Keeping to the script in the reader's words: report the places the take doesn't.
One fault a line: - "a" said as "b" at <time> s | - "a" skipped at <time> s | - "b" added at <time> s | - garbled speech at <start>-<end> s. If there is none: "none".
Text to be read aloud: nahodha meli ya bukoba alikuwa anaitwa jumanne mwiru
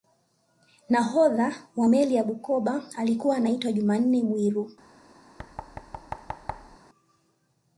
- "wa" added at 1.8 s